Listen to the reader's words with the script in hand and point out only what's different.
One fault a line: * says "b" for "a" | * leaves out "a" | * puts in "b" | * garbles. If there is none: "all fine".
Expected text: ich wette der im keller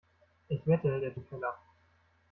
all fine